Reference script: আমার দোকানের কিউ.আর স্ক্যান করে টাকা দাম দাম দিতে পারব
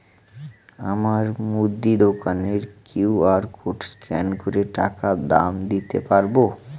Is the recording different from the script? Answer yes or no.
yes